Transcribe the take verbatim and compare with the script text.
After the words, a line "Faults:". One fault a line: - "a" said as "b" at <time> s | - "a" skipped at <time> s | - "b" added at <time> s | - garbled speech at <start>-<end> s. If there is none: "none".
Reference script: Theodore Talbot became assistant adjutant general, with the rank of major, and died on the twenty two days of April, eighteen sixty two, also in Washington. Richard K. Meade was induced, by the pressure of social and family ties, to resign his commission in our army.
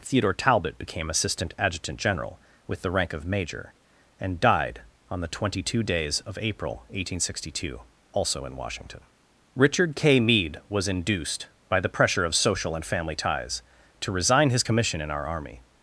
Theodore Talbot became assistant adjutant general, with the rank of major, and died on the twenty two days of April, eighteen sixty two, also in Washington. Richard K. Meade was induced, by the pressure of social and family ties, to resign his commission in our army.
Faults:
none